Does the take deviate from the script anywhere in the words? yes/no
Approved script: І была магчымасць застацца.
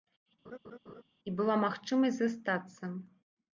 no